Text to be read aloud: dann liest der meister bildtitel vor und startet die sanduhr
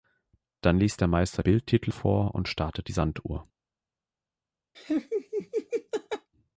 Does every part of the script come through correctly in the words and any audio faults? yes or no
no